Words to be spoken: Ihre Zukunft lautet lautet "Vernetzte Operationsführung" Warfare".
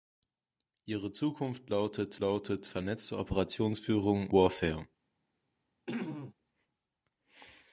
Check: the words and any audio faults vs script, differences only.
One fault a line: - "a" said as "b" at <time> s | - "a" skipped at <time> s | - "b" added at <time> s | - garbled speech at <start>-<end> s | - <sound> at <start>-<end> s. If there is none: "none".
- throat clearing at 5.9-6.3 s